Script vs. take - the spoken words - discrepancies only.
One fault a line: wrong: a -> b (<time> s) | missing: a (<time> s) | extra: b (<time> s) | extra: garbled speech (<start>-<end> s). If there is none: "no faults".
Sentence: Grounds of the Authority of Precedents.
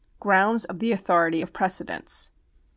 no faults